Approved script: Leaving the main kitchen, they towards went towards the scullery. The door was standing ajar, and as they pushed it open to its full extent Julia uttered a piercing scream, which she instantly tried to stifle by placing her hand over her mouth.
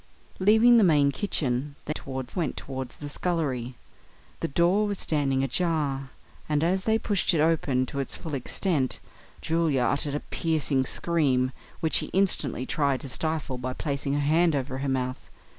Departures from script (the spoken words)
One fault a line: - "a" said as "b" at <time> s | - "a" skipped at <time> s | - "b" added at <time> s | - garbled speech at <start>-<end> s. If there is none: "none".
none